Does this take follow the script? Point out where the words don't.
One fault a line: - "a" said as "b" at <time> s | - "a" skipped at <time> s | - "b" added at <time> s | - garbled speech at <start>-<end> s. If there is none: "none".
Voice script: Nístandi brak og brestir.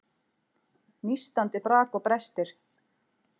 none